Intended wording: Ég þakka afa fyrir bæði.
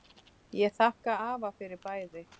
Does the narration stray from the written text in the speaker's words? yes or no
no